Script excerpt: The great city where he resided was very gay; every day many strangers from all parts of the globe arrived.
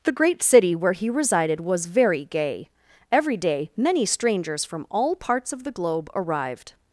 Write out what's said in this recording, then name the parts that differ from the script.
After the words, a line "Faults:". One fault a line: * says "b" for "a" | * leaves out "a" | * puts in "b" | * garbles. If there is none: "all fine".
The great city where he resided was very gay; every day many strangers from all parts of the globe arrived.
Faults:
all fine